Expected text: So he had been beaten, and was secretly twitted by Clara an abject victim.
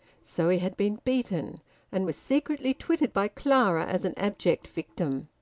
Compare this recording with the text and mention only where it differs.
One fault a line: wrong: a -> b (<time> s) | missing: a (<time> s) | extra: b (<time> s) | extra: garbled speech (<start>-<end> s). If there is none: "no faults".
extra: as (3.9 s)